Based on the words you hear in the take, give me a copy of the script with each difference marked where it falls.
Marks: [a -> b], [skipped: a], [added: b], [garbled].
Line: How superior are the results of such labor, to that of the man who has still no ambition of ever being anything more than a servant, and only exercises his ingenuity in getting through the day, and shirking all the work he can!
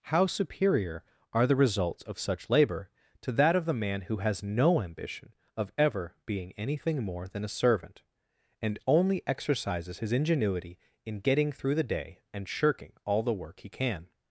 How superior are the results of such labor, to that of the man who has [skipped: still] no ambition of ever being anything more than a servant, and only exercises his ingenuity in getting through the day, and shirking all the work he can!